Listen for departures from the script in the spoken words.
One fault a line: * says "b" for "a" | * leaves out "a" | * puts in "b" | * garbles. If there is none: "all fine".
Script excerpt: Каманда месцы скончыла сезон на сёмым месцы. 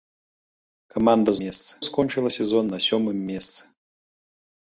all fine